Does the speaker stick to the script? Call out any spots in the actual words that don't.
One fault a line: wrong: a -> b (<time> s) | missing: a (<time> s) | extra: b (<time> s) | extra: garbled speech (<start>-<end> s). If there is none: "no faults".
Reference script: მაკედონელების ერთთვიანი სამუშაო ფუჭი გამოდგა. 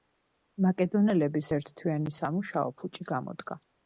no faults